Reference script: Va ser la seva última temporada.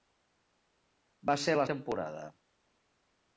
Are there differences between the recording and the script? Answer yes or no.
yes